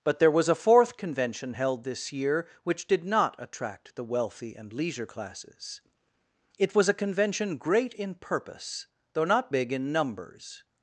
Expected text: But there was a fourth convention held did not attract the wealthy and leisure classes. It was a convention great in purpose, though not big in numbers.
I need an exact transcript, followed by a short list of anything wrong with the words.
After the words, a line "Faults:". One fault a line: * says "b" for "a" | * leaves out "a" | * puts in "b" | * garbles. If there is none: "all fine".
But there was a fourth convention held this year which did not attract the wealthy and leisure classes. It was a convention great in purpose, though not big in numbers.
Faults:
* puts in "this year which"